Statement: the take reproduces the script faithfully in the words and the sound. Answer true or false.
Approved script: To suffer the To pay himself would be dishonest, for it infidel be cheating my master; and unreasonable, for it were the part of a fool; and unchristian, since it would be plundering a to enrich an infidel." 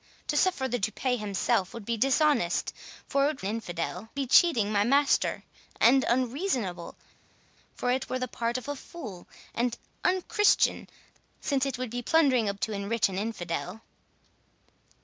true